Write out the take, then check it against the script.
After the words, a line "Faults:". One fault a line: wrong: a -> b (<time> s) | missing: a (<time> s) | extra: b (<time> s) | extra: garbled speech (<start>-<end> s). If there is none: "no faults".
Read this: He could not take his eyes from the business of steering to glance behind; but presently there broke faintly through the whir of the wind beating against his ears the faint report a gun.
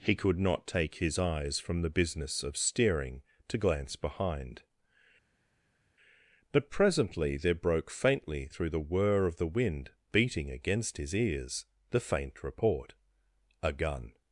He could not take his eyes from the business of steering to glance behind; but presently there broke faintly through the whir of the wind beating against his ears the faint report a gun.
Faults:
no faults